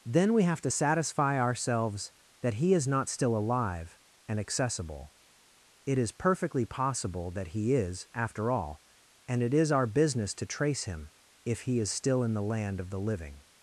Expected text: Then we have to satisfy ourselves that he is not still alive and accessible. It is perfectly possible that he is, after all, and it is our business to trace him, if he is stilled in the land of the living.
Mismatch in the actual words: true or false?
true